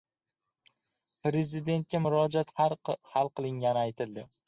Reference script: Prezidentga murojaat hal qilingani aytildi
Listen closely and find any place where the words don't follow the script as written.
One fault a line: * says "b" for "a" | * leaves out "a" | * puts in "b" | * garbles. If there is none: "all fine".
all fine